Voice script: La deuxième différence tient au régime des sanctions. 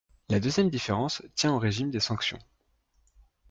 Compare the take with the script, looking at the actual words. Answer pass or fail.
pass